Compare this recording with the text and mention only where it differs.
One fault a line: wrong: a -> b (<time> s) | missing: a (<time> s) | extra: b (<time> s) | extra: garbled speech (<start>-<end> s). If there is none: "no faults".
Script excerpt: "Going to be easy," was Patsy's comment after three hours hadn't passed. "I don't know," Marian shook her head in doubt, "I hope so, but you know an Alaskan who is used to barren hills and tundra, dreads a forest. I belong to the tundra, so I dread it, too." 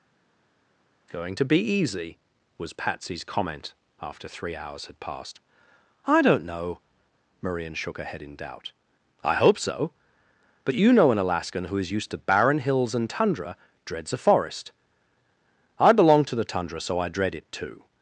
wrong: hadn't -> had (4.9 s)